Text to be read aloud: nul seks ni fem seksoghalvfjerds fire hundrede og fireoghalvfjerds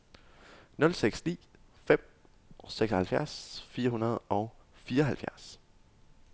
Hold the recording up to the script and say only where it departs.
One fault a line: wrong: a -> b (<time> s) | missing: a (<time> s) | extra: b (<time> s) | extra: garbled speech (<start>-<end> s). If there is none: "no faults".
no faults